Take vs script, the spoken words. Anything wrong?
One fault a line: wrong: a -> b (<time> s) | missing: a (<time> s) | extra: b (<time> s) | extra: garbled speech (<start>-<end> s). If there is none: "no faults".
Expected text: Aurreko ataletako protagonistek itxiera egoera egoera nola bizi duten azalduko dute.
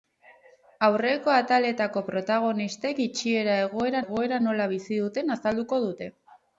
no faults